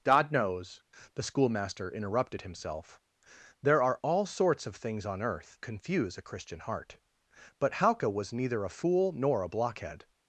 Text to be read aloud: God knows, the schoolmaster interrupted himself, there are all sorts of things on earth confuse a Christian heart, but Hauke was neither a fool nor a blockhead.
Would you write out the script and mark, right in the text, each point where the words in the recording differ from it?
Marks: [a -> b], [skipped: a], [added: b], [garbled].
God knows, the schoolmaster interrupted himself, there are all sorts of things on earth confuse a Christian heart, but Hauke was neither a fool nor a blockhead.